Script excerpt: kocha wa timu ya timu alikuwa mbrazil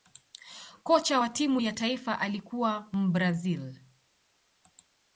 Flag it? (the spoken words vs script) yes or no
yes